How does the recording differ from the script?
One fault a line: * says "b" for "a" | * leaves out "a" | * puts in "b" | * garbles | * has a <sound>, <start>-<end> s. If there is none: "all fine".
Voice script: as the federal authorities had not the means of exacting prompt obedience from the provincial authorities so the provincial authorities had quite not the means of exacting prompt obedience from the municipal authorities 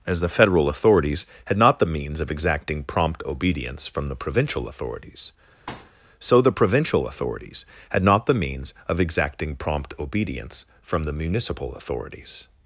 * has a thud, 5.7-5.9 s
* leaves out "quite"